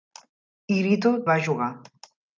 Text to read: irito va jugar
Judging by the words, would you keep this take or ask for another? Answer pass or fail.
pass